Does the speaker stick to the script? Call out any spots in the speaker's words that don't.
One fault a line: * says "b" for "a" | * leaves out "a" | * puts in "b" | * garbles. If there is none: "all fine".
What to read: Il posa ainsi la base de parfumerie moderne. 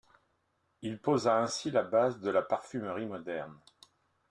* puts in "la"